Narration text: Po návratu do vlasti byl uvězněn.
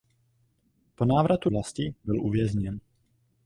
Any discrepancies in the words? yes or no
yes